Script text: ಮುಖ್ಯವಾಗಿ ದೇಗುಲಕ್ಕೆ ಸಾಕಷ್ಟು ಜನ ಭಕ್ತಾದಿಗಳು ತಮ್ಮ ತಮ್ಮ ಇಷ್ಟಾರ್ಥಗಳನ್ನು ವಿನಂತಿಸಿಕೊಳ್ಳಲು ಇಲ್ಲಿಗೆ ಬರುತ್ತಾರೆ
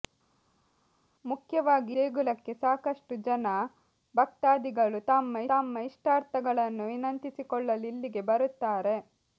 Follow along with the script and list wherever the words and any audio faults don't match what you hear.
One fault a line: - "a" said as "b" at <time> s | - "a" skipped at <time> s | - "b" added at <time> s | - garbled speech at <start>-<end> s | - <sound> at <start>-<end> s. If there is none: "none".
none